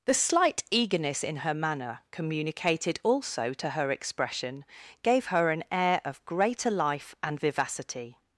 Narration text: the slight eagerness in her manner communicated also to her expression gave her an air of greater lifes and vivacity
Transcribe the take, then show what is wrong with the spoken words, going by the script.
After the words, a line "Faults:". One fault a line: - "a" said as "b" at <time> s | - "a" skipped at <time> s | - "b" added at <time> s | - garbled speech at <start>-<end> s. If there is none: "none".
the slight eagerness in her manner communicated also to her expression gave her an air of greater life and vivacity
Faults:
- "lifes" said as "life" at 6.7 s